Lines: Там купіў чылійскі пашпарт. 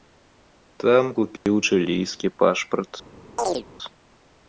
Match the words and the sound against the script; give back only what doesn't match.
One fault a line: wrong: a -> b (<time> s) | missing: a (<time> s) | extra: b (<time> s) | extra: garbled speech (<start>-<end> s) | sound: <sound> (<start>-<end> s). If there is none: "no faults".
sound: dropout (1.4-1.5 s)
sound: chirp (3.4-3.6 s)